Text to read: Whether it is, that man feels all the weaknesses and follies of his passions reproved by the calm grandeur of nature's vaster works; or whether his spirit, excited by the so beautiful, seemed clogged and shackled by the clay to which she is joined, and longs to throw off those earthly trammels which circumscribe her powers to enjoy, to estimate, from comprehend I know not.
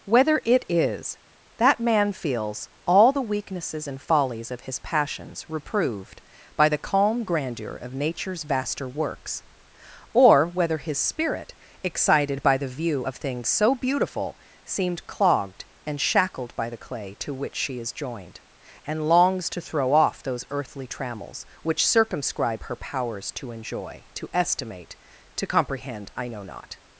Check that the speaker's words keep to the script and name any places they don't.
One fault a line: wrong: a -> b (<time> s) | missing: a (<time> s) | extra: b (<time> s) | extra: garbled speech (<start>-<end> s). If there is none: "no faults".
extra: view of things (12.7 s)
wrong: from -> to (25.4 s)